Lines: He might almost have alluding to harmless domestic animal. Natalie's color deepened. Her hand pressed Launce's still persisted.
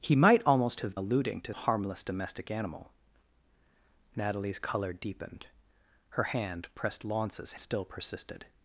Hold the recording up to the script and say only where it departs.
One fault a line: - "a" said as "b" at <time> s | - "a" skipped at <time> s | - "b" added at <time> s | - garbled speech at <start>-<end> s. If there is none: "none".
none